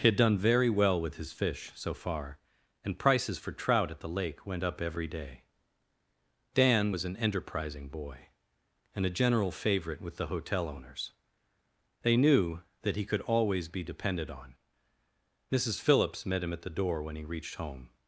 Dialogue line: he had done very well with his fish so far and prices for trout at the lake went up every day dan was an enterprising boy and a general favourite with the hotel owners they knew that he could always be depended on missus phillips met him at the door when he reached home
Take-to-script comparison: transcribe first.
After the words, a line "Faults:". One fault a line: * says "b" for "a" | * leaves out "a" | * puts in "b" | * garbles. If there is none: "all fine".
he had done very well with his fish so far and prices for trout at the lake went up every day dan was an enterprising boy and a general favourite with the hotel owners they knew that he could always be depended on missus phillips met him at the door when he reached home
Faults:
all fine